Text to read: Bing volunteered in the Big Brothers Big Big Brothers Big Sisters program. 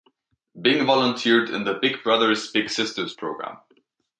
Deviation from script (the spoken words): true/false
true